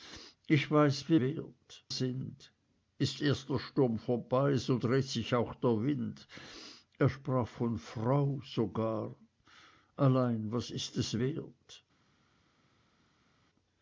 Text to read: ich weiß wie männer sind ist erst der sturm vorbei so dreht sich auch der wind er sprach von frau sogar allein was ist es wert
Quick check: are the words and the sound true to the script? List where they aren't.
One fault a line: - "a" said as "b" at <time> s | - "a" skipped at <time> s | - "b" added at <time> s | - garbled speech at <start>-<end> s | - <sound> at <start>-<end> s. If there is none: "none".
- "männer" said as "wert" at 1.2 s